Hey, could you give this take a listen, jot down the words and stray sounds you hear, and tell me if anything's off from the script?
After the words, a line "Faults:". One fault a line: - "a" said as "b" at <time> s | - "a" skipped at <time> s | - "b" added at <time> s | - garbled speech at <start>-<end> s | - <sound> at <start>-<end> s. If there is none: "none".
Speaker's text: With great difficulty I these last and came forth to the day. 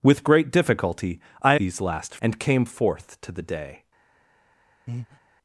With great difficulty I these last and came forth to the day.
Faults:
- breath at 4.9-5.2 s